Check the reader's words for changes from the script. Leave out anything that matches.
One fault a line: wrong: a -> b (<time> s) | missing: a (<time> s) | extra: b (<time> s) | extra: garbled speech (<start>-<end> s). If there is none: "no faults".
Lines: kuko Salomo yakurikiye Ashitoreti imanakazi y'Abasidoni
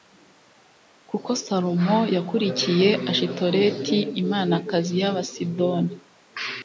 no faults